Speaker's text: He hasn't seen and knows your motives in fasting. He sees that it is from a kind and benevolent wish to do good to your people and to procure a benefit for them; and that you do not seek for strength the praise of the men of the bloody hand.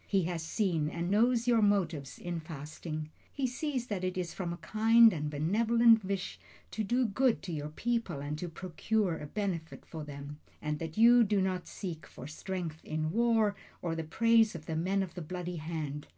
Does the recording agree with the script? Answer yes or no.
no